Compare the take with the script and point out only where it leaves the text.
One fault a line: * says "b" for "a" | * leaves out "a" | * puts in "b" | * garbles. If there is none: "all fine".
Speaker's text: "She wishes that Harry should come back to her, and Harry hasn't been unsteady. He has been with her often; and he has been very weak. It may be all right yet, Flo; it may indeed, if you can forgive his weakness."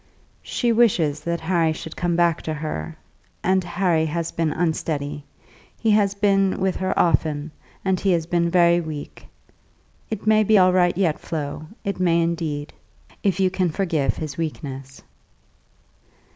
* says "has" for "hasn't"